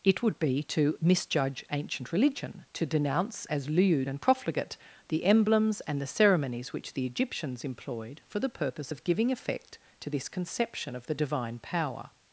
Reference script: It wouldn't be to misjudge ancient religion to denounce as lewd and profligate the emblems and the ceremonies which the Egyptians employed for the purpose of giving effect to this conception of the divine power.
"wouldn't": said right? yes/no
no